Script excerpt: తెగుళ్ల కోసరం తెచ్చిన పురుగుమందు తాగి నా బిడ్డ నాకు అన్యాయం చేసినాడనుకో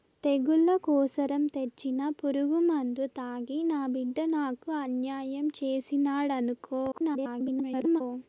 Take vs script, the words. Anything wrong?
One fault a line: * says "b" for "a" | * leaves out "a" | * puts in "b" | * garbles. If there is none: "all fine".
* garbles